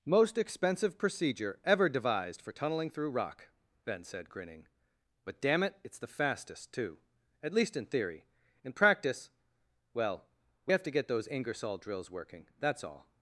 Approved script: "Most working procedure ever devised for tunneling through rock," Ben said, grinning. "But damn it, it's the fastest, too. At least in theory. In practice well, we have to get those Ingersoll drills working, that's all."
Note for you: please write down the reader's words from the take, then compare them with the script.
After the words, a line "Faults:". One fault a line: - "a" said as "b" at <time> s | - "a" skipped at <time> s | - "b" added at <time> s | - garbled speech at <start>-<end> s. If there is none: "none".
"Most expensive procedure ever devised for tunneling through rock," Ben said, grinning. "But damn it, it's the fastest, too. At least in theory. In practice well, we have to get those Ingersoll drills working, that's all."
Faults:
- "working" said as "expensive" at 0.4 s